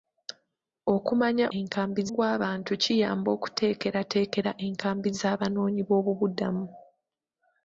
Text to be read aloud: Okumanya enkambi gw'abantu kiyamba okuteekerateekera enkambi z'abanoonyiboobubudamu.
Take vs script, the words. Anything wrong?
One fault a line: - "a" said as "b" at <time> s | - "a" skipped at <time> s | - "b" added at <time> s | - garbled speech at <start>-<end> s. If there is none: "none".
none